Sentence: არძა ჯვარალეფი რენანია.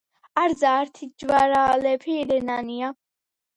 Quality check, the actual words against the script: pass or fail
fail